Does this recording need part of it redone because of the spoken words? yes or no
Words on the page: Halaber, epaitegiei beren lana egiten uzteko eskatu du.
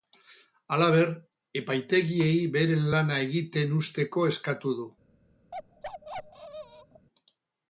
no